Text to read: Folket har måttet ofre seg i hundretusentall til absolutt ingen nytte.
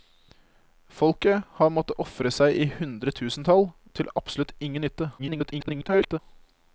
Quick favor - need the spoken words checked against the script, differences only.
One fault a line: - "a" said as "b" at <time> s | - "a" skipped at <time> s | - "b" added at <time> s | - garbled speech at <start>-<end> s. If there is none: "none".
- garbled speech at 5.2-6.2 s